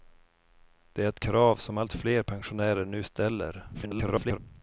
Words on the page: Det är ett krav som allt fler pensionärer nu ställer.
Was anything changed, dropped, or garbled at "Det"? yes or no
no